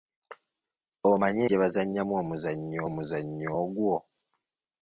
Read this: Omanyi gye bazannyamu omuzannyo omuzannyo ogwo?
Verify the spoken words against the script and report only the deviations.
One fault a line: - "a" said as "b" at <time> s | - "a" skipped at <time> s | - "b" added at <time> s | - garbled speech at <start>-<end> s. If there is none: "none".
none